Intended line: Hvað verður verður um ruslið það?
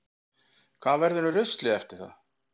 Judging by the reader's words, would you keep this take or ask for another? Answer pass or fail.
fail